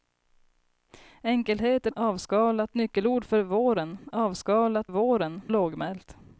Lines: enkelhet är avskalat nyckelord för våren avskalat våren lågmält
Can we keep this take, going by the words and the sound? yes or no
yes